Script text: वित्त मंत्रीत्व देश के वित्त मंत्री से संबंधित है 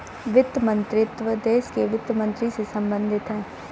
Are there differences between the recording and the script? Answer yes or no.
no